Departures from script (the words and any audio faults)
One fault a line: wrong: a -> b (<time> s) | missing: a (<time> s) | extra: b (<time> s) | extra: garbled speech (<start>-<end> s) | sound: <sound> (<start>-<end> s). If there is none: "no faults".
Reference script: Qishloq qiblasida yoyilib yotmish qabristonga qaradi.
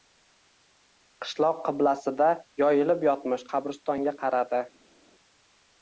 no faults